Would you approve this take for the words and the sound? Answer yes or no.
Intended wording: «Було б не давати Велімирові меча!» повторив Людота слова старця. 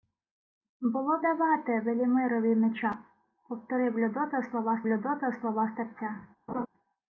no